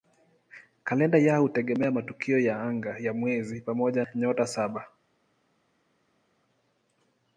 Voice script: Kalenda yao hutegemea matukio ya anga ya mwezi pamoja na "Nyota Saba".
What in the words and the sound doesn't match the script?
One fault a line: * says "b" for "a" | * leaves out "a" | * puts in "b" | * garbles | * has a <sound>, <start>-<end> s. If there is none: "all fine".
all fine